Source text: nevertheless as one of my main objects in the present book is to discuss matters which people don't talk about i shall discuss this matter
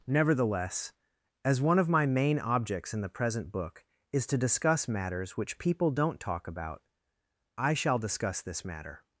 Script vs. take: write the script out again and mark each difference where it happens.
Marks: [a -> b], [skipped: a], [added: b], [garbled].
nevertheless as one of my main objects in the present book is to discuss matters which people don't talk about i shall discuss this matter